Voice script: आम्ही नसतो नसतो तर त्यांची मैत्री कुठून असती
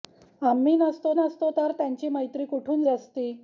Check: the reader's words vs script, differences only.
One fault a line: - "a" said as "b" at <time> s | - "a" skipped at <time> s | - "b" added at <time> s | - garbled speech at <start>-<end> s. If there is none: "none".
none